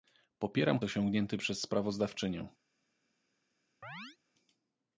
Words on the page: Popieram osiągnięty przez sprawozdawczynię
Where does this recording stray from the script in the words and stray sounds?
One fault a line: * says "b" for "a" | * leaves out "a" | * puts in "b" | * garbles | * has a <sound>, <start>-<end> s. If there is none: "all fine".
* has a chirp, 3.8-4.2 s